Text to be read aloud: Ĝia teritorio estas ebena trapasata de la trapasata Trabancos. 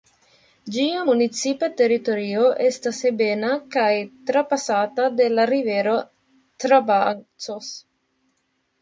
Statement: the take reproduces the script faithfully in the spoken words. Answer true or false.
false